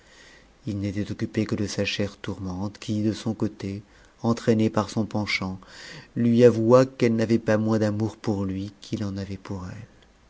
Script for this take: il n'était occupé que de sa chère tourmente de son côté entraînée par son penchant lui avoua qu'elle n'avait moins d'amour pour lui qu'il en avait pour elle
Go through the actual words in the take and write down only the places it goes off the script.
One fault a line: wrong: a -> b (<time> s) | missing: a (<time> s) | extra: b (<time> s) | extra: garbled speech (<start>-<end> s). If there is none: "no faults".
extra: qui (2.8 s)
extra: pas (7.4 s)